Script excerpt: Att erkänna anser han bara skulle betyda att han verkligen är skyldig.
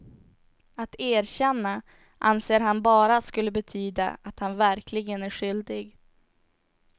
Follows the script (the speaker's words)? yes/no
yes